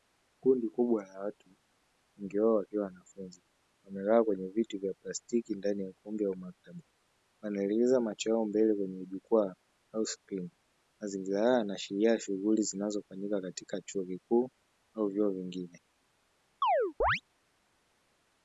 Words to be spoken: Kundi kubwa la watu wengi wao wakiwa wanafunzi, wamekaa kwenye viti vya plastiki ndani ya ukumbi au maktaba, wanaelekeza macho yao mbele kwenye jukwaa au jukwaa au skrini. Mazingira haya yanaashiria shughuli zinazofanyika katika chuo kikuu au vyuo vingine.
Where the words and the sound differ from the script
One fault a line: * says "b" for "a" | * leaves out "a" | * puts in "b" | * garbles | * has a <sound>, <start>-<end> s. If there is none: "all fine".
* leaves out "jukwaa au"
* has a chirp, 16.6-17.2 s